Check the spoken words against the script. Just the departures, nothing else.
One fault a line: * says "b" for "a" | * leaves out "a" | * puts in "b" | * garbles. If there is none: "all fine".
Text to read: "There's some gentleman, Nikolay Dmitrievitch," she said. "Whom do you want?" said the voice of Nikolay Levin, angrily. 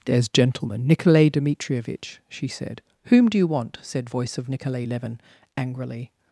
* leaves out "some"
* leaves out "the"